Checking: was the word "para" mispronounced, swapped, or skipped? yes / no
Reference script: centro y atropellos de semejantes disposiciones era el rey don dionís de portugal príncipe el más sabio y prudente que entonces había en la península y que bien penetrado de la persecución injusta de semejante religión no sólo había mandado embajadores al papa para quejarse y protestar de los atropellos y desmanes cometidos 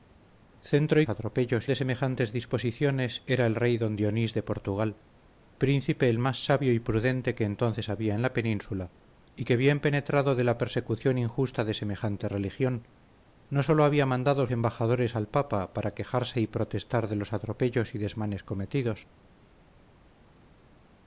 no